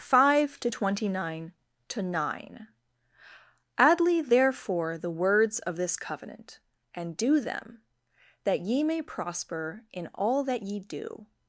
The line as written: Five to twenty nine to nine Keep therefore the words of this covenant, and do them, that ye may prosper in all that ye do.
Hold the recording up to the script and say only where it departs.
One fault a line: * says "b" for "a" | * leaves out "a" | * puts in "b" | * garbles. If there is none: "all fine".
* says "Adly" for "Keep"